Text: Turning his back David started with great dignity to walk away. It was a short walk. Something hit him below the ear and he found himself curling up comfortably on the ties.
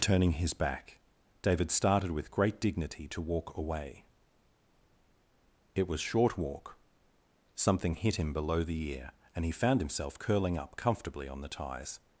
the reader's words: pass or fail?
fail